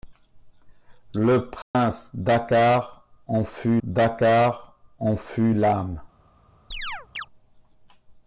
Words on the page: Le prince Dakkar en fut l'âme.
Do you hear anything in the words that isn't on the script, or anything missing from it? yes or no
yes